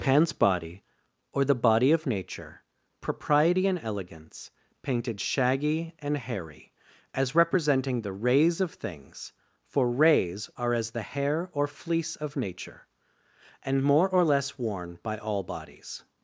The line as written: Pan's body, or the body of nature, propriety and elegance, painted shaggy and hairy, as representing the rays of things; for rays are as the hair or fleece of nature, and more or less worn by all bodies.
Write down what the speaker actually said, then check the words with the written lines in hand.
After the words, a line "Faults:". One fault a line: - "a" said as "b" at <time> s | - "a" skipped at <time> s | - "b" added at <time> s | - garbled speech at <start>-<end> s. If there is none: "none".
Pan's body, or the body of nature, propriety and elegance, painted shaggy and hairy, as representing the rays of things; for rays are as the hair or fleece of nature, and more or less worn by all bodies.
Faults:
none